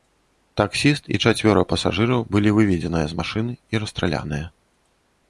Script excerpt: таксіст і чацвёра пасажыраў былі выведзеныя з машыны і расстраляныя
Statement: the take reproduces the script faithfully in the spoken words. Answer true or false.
true